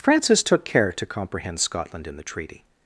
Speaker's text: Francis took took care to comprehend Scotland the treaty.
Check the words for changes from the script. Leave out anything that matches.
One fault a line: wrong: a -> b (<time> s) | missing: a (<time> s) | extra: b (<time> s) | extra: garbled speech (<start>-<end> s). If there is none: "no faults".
missing: took (0.7 s)
extra: in (2.1 s)